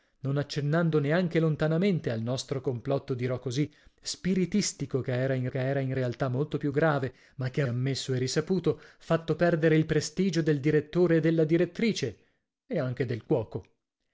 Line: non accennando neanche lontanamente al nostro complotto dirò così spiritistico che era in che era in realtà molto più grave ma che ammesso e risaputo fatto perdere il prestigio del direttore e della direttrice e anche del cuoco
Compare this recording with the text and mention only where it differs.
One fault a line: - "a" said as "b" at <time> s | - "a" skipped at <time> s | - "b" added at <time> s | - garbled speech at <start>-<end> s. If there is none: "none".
none